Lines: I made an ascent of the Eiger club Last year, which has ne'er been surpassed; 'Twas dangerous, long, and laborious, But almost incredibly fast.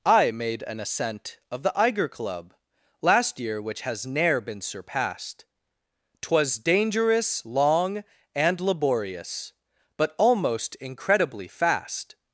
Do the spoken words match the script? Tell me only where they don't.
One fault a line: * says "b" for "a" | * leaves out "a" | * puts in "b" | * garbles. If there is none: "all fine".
all fine